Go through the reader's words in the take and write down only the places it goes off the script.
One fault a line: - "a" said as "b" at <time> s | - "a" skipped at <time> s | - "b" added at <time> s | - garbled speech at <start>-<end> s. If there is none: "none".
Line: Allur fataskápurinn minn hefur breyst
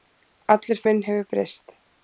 - "fataskápurinn" skipped at 0.8 s